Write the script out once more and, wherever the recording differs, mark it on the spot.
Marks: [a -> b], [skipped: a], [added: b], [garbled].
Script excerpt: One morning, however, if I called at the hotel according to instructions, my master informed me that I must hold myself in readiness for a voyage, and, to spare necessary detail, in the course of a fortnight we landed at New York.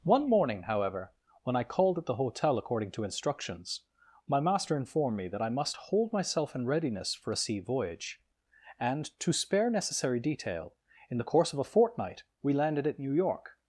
One morning, however, [if -> when] I called at the hotel according to instructions, my master informed me that I must hold myself in readiness for a [added: sea] voyage, and, to spare necessary detail, in the course of a fortnight we landed at New York.